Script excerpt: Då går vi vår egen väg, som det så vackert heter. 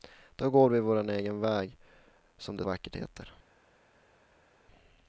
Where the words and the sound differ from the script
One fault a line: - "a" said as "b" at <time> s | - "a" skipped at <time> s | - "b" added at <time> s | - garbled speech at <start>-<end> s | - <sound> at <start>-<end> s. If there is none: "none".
- "så" skipped at 2.6 s